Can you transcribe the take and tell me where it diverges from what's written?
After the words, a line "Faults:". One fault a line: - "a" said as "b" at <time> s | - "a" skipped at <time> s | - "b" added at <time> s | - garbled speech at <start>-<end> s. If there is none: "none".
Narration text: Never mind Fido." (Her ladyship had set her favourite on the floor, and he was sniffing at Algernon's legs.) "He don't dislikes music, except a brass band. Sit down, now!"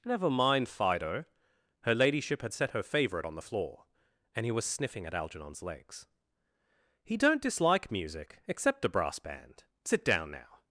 Never mind Fido." (Her ladyship had set her favourite on the floor, and he was sniffing at Algernon's legs.) "He don't dislike music, except a brass band. Sit down, now!"
Faults:
- "dislikes" said as "dislike" at 7.4 s